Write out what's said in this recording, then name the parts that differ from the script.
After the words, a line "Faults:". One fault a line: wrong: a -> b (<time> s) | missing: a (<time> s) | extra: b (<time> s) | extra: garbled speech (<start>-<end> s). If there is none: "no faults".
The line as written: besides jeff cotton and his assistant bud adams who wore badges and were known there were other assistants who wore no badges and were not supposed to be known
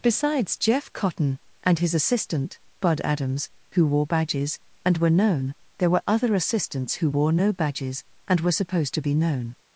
besides jeff cotton and his assistant bud adams who wore badges and were known there were other assistants who wore no badges and were supposed to be known
Faults:
missing: not (8.5 s)